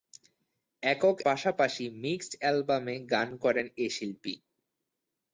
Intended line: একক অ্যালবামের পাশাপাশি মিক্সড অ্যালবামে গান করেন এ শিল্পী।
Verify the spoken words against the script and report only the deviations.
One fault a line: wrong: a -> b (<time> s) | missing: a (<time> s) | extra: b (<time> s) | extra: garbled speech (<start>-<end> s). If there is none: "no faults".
missing: অ্যালবামের (1.2 s)